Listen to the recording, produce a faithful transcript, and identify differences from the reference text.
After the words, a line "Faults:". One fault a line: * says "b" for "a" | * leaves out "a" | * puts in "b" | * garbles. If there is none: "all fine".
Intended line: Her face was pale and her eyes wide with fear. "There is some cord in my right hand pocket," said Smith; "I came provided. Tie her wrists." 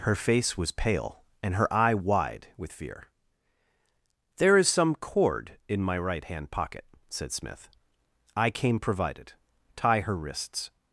Her face was pale and her eye wide with fear. "There is some cord in my right hand pocket," said Smith; "I came provided. Tie her wrists."
Faults:
* says "eye" for "eyes"